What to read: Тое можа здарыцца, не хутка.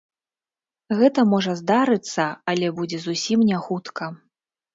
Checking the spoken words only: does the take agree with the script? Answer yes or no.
no